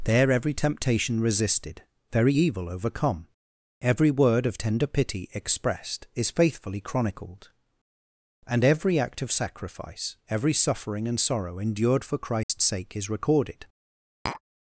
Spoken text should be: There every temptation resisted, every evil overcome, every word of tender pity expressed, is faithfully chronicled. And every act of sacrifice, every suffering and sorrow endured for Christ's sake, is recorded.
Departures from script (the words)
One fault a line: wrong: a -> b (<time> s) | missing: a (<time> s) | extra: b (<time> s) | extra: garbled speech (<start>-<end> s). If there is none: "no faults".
wrong: every -> very (2.1 s)